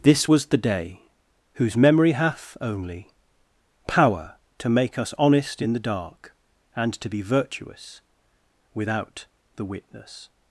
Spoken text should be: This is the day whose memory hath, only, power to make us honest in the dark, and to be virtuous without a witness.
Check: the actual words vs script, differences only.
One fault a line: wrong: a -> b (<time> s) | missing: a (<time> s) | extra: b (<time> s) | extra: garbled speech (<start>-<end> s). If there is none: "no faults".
wrong: is -> was (0.3 s)
wrong: a -> the (9.5 s)